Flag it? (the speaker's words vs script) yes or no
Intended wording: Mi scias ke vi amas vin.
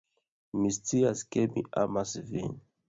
yes